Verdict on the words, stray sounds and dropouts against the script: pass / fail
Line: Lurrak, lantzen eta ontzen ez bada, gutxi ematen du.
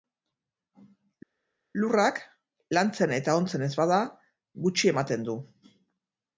pass